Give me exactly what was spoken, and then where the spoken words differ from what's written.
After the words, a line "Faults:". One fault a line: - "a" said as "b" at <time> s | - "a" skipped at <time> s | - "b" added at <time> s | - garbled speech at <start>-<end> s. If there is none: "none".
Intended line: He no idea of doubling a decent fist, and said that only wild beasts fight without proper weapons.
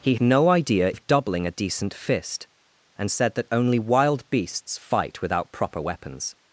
He no idea of doubling a decent fist, and said that only wild beasts fight without proper weapons.
Faults:
none